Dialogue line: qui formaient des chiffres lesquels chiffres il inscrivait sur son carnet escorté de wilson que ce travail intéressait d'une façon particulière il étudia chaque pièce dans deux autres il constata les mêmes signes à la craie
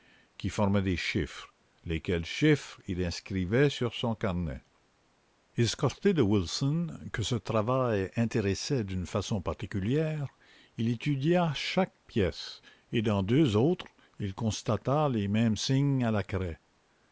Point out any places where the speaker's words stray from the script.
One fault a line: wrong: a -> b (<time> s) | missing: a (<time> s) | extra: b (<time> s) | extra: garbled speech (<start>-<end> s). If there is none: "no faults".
extra: et (12.9 s)